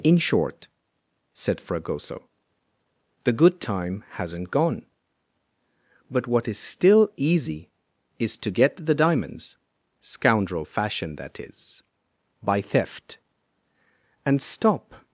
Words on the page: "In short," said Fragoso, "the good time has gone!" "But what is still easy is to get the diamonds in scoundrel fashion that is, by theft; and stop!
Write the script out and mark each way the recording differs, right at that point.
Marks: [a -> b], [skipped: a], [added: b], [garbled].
"In short," said Fragoso, "the good time [has -> hasn't] gone!" "But what is still easy is to get the diamonds [skipped: in] scoundrel fashion that is, by theft; and stop!